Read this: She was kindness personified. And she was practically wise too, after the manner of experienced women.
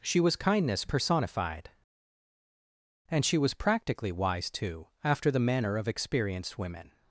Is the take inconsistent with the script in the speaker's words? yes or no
no